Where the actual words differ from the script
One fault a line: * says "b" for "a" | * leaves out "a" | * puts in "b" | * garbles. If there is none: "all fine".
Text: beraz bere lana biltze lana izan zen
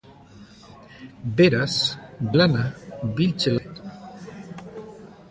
* leaves out "bere"
* leaves out "lana izan"